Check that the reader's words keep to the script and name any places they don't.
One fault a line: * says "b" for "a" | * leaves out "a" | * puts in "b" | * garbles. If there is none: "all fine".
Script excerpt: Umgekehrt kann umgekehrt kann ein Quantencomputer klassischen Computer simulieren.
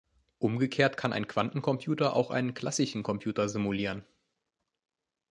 * says "ein Quantencomputer auch einen" for "umgekehrt kann ein Quantencomputer"